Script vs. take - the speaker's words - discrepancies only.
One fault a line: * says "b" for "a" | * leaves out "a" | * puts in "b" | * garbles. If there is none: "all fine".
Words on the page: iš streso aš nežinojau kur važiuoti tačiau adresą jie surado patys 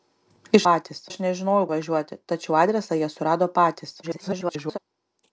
* says "patys" for "streso"
* leaves out "kur"
* garbles